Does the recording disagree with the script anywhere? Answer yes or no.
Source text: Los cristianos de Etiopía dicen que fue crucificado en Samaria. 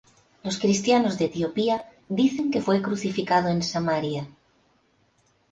no